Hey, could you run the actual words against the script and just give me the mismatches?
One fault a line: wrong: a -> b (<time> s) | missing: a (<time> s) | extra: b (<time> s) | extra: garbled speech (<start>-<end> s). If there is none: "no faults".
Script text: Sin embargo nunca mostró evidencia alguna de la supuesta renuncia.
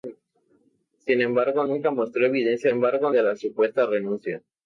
wrong: alguna -> embargo (2.7 s)